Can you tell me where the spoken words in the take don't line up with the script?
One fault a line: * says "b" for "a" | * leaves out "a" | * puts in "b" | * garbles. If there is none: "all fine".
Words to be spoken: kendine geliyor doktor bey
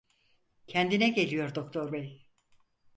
all fine